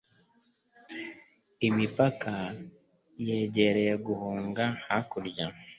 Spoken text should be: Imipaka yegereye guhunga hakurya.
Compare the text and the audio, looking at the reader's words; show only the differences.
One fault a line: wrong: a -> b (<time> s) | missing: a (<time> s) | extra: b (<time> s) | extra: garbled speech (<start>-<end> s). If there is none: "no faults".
no faults